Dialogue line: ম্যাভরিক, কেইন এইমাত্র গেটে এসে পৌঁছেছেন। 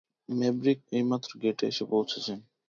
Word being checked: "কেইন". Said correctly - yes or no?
no